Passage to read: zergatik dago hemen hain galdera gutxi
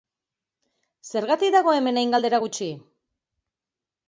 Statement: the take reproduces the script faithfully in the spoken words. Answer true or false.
true